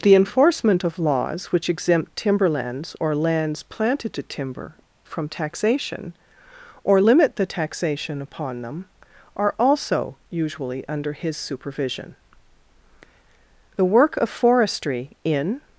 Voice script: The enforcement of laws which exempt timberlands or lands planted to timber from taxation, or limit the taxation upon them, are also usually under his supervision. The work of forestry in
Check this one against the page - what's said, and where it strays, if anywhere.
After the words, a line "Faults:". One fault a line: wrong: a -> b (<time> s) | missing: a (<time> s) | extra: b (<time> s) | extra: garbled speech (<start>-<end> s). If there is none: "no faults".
The enforcement of laws which exempt timberlands or lands planted to timber from taxation, or limit the taxation upon them, are also usually under his supervision. The work of forestry in
Faults:
no faults